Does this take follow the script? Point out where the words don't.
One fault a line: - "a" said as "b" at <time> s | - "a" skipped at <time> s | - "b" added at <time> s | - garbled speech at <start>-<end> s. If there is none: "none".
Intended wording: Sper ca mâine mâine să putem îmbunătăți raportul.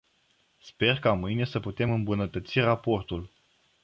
- "mâine" skipped at 1.4 s